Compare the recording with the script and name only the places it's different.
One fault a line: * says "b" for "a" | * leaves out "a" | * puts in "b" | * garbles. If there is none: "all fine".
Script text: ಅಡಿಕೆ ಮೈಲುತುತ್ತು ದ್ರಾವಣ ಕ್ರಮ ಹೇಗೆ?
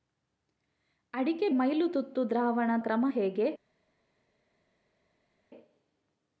all fine